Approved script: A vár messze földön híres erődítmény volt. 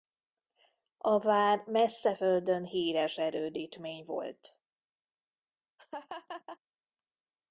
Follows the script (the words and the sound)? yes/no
no